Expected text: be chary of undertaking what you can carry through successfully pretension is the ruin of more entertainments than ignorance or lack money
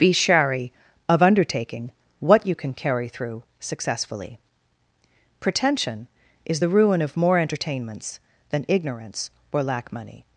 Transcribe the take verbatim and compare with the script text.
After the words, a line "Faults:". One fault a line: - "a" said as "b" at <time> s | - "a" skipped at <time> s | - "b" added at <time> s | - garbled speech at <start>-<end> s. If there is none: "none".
be chary of undertaking what you can carry through successfully pretension is the ruin of more entertainments than ignorance or lack money
Faults:
none